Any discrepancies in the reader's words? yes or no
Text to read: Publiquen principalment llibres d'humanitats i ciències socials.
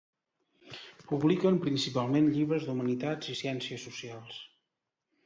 no